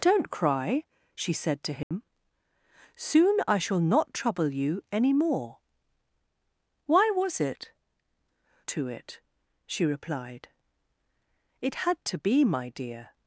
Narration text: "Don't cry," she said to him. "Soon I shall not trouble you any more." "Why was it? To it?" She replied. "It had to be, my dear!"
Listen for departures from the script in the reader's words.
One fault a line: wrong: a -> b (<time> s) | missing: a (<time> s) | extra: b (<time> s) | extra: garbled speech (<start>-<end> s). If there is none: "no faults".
no faults